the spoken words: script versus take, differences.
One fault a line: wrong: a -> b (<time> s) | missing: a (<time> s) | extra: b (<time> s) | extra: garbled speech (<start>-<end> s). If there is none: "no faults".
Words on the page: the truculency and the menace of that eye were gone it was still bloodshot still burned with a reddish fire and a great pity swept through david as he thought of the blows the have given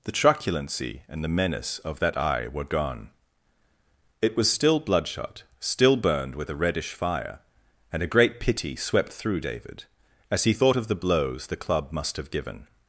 extra: club must (11.6 s)